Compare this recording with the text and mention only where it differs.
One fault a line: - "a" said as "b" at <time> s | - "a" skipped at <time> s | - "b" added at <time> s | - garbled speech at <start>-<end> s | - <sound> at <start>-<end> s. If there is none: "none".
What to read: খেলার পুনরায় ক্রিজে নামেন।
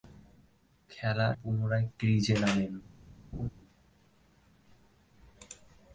- laugh at 3.3-3.5 s